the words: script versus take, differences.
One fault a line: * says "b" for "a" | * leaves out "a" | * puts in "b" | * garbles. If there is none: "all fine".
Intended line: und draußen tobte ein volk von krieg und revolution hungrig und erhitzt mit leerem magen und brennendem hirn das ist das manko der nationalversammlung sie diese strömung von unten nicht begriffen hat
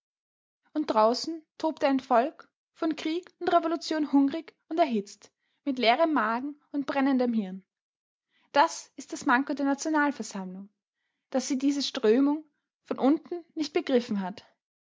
* puts in "daß"